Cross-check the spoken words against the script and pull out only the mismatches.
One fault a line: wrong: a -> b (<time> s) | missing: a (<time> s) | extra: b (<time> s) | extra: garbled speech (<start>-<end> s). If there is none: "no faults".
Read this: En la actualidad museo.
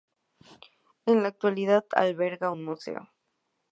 extra: alberga un (1.9 s)